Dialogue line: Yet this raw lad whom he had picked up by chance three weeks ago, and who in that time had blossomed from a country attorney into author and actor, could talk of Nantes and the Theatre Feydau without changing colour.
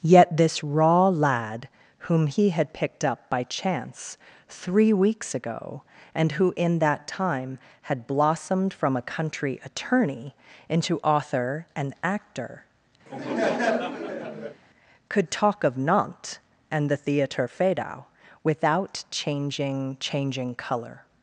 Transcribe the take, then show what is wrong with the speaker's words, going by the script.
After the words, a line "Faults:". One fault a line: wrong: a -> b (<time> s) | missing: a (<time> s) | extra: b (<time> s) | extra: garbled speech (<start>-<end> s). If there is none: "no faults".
Yet this raw lad whom he had picked up by chance three weeks ago, and who in that time had blossomed from a country attorney into author and actor, could talk of Nantes and the Theatre Feydau without changing changing colour.
Faults:
extra: changing (20.0 s)